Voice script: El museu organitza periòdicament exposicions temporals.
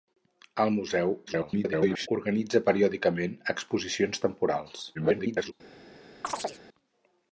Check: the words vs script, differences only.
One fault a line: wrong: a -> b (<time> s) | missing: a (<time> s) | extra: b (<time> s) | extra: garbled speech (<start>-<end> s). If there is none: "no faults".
extra: garbled speech (1.3-2.1 s)
extra: garbled speech (4.9-5.5 s)